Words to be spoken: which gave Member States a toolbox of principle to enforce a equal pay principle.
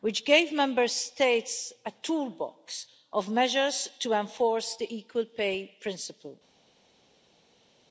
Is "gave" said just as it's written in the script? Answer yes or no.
yes